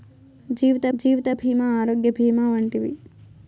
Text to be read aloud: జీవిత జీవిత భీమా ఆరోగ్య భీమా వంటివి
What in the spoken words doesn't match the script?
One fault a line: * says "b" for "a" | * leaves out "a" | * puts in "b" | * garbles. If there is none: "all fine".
all fine